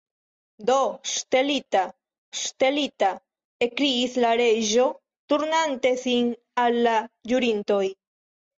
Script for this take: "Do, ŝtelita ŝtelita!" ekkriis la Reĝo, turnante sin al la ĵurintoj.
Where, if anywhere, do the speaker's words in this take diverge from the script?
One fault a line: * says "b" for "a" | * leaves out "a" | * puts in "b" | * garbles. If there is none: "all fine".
all fine